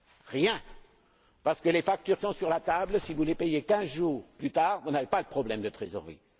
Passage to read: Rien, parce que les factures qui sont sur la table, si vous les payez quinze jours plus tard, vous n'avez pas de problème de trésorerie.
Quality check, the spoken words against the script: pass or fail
fail